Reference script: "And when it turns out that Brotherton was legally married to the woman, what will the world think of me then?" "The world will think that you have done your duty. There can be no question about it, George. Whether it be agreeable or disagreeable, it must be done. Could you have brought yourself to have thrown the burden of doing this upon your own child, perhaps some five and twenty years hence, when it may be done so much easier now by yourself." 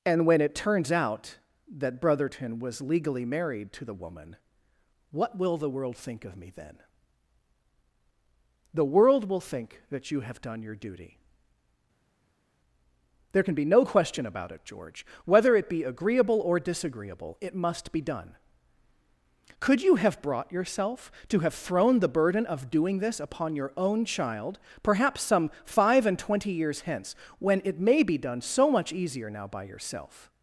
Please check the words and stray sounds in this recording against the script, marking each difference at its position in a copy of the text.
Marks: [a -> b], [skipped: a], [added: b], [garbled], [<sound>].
"And when it turns out that Brotherton was legally married to the woman, what will the world think of me then?" "The world will think that you have done your duty. There can be no question about it, George. Whether it be agreeable or disagreeable, it must be done. Could you have brought yourself to have thrown the burden of doing this upon your own child, perhaps some five and twenty years hence, when it may be done so much easier now by yourself."